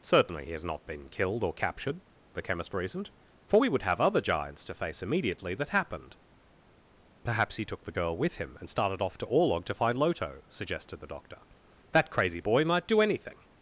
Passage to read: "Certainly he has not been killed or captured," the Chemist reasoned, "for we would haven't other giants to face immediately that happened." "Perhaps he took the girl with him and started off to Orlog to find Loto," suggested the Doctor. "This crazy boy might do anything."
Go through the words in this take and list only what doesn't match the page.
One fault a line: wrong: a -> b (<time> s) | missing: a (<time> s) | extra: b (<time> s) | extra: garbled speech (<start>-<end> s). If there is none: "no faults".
wrong: haven't -> have (3.8 s)
wrong: This -> That (11.9 s)